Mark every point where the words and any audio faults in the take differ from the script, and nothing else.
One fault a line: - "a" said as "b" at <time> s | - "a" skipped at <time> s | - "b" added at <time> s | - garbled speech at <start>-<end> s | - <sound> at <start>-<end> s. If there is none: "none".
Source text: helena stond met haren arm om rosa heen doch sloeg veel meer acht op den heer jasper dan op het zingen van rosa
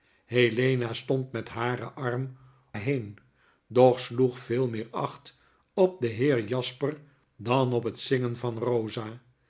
- "om rosa" skipped at 2.4 s